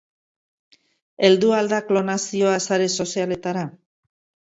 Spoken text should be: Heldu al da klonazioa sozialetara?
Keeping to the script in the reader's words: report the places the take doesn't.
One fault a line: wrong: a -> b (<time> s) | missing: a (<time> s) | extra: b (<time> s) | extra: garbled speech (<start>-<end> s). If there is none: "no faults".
extra: sare (2.7 s)